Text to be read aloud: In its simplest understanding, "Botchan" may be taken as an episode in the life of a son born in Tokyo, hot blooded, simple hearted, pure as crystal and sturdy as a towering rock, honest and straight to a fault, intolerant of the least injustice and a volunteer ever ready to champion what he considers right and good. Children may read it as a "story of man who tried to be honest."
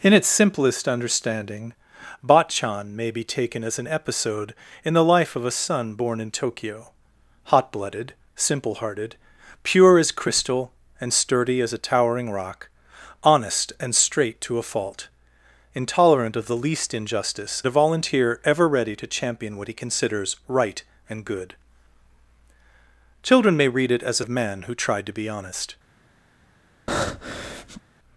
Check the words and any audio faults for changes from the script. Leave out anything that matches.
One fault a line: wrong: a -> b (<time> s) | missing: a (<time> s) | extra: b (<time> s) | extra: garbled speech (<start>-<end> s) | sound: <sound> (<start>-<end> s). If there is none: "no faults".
missing: and (17.6 s)
missing: story (24.3 s)
sound: breath (26.9-27.8 s)